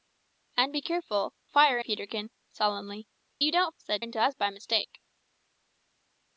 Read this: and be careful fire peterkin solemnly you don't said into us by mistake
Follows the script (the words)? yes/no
yes